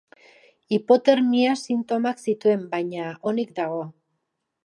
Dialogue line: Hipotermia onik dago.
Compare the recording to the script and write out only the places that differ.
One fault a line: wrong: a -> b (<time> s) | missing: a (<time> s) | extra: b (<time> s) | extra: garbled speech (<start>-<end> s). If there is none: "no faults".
extra: sintomak zituen baina (1.6 s)